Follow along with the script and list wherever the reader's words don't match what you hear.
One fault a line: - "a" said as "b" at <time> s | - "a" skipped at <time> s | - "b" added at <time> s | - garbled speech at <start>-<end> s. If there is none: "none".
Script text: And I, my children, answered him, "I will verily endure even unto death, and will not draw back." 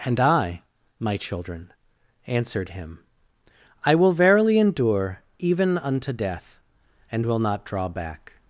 none